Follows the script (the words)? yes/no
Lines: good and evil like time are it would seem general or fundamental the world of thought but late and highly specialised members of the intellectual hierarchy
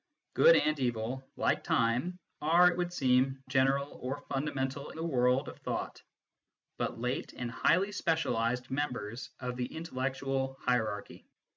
yes